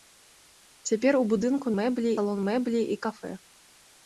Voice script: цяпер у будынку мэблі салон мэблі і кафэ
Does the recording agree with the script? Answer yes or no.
yes